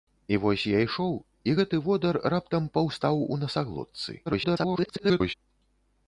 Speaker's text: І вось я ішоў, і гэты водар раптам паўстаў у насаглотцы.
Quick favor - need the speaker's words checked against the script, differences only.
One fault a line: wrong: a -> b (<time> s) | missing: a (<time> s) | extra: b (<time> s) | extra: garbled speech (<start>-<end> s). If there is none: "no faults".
extra: garbled speech (4.3-5.3 s)